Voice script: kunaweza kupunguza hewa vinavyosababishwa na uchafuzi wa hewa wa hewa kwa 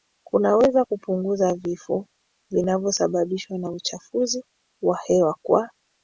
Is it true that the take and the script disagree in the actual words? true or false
true